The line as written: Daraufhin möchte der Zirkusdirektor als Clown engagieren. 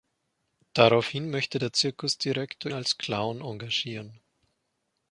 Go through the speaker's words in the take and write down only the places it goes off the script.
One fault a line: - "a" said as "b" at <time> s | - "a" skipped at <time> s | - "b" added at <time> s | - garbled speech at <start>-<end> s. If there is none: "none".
none